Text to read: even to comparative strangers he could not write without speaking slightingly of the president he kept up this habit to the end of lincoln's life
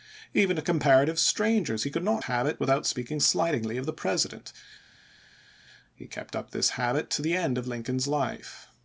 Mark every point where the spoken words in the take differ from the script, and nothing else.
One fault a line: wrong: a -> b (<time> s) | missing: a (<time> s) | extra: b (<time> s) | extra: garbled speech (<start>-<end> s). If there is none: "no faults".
wrong: write -> habit (2.2 s)